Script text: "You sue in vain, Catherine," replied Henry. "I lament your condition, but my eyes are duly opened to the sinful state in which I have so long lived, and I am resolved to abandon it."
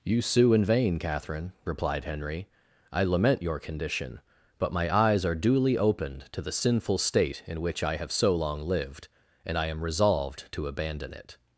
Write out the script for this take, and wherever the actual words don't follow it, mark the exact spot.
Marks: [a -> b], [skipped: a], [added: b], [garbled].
"You sue in vain, Catherine," replied Henry. "I lament your condition, but my eyes are duly opened to the sinful state in which I have so long lived, and I am resolved to abandon it."